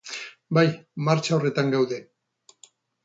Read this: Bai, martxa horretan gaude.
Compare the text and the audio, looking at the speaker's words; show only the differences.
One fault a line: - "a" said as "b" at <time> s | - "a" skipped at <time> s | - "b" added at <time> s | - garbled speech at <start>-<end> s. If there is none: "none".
none